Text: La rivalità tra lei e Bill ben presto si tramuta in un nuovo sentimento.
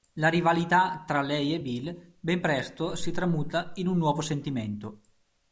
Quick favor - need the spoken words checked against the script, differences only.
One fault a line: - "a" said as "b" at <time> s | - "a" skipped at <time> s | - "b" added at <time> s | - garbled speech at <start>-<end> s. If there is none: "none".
none